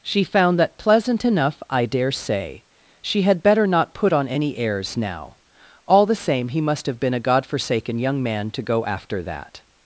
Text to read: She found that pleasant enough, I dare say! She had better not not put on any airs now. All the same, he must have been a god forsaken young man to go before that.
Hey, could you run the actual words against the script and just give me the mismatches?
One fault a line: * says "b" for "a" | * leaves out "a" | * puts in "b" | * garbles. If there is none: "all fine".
* leaves out "not"
* says "after" for "before"